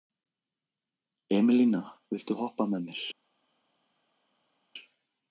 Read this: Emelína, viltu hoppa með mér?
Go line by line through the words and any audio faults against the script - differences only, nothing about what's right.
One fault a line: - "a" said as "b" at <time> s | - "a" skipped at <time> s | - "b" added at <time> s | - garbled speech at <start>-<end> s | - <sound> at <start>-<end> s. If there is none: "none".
none